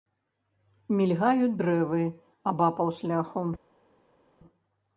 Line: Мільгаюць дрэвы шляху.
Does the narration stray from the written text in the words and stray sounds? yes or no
yes